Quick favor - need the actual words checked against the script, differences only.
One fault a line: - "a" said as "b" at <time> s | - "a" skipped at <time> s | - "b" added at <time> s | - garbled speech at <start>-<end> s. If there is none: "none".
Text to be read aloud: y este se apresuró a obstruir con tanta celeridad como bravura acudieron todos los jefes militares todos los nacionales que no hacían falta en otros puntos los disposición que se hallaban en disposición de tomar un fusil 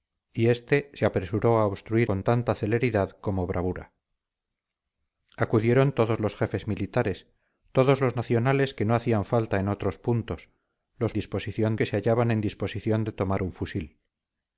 none